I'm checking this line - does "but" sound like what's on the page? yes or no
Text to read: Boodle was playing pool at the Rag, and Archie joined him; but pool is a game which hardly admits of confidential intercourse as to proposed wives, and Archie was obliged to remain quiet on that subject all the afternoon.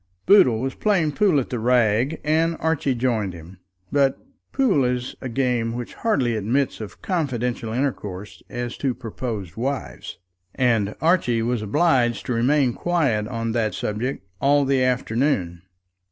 yes